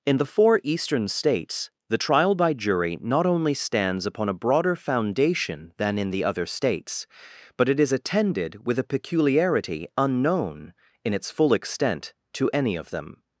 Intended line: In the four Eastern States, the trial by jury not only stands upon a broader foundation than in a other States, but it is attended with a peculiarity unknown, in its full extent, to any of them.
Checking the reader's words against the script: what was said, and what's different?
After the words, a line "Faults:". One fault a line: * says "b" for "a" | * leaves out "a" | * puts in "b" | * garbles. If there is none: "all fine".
In the four Eastern States, the trial by jury not only stands upon a broader foundation than in the other States, but it is attended with a peculiarity unknown, in its full extent, to any of them.
Faults:
* says "the" for "a"